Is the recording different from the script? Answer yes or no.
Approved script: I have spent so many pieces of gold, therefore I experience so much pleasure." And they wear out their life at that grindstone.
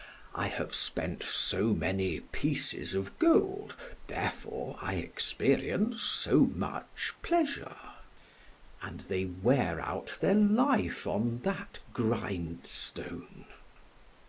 yes